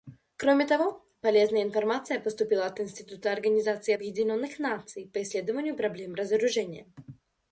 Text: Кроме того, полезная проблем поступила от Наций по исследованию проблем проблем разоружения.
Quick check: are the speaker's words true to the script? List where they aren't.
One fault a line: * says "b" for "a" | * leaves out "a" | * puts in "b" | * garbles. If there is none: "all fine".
* says "информация" for "проблем"
* puts in "Института Организации Объединенных"
* leaves out "проблем"